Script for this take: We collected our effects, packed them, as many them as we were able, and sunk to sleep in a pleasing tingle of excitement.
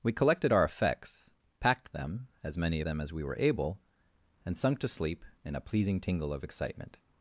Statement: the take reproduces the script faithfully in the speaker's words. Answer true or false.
true